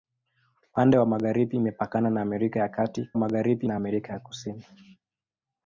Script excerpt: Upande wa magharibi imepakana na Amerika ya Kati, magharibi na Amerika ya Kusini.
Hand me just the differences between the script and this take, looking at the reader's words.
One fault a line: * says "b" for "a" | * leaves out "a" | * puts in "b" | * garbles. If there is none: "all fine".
all fine